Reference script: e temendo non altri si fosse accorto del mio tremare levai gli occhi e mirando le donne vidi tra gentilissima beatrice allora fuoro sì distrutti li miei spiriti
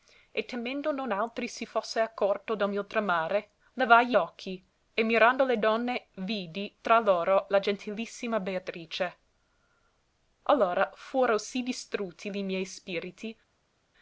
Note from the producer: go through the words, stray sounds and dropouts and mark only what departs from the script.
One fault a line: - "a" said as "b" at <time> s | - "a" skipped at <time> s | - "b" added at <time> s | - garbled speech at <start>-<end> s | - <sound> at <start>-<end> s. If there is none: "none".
- "loro la" added at 7.0 s